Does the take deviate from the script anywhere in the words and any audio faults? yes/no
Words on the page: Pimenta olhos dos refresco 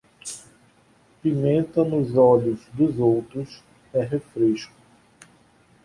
yes